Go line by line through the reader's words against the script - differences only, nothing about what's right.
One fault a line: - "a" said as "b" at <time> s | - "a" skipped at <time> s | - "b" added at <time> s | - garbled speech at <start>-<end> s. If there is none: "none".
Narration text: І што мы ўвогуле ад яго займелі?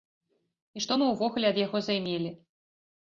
none